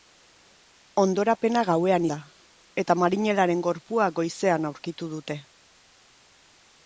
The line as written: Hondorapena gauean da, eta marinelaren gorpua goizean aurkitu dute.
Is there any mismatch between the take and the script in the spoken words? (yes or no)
no